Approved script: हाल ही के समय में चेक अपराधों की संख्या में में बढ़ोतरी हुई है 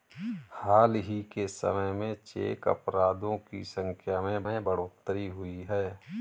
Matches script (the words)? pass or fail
pass